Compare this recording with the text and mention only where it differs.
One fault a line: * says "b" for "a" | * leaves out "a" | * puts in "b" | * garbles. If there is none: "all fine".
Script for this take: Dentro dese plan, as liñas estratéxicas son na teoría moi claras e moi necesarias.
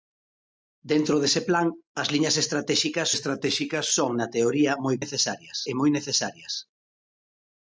* puts in "estratéxicas"
* says "necesarias" for "claras"